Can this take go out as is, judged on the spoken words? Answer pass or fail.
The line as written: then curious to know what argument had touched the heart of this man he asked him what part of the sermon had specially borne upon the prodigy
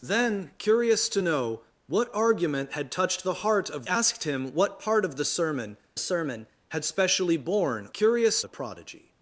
fail